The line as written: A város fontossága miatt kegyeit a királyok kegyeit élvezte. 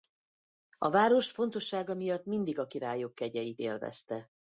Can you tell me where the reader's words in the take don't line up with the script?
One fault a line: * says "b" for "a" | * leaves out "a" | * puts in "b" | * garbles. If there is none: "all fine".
* says "mindig" for "kegyeit"